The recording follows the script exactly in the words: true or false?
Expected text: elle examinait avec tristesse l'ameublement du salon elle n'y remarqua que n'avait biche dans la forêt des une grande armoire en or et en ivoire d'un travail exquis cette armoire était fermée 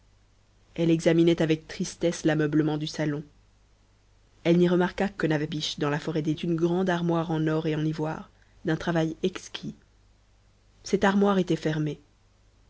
true